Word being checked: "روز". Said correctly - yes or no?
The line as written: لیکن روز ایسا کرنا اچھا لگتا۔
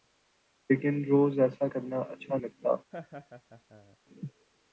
yes